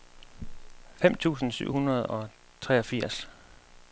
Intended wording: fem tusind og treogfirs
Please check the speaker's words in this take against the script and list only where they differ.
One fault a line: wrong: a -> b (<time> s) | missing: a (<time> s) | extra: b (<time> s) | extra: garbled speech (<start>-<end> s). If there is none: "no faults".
extra: syv hundrede (1.5 s)